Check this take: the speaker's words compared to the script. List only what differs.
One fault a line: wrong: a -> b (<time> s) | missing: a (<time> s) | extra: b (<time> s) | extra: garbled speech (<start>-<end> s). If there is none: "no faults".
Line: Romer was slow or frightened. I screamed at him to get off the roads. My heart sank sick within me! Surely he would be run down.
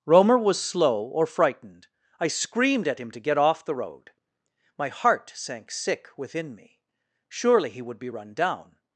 wrong: roads -> road (3.7 s)